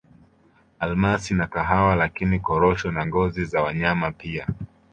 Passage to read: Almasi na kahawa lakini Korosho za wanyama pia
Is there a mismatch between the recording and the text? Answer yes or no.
yes